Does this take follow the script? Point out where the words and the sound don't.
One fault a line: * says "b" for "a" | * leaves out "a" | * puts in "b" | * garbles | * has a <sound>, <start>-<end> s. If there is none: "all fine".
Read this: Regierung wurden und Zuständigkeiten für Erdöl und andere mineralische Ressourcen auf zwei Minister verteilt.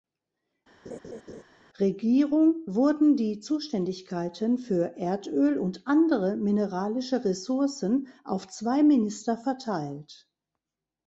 * has a laugh, 0.8-1.4 s
* says "die" for "und"